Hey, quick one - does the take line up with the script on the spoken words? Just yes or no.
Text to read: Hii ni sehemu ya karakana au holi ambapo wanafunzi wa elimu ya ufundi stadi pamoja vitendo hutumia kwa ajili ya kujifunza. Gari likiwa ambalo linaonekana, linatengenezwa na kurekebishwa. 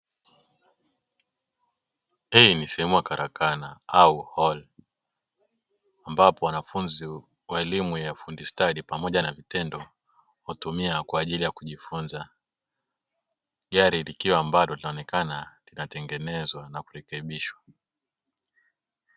no